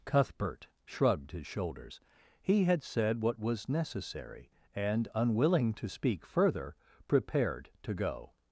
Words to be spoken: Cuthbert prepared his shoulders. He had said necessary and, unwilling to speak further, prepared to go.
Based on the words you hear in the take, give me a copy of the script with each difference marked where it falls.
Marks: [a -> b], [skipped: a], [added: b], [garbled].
Cuthbert [prepared -> shrugged] his shoulders. He had said [added: what was] necessary and, unwilling to speak further, prepared to go.